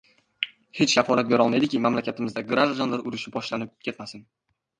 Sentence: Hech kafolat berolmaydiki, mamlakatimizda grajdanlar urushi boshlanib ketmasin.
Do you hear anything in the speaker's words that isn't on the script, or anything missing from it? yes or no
no